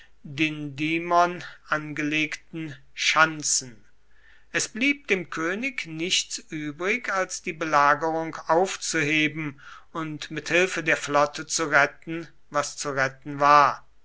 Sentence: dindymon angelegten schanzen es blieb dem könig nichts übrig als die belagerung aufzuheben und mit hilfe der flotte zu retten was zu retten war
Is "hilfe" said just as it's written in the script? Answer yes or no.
yes